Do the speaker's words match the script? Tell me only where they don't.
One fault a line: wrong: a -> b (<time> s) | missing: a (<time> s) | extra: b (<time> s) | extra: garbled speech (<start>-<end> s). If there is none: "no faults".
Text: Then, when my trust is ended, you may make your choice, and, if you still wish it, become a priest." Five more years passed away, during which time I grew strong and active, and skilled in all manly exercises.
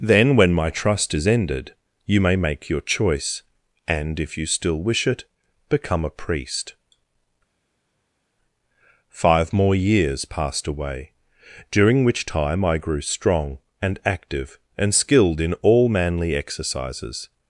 no faults